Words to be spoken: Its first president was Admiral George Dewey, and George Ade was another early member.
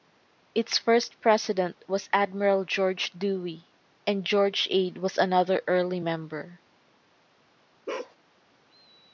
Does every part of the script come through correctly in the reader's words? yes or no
yes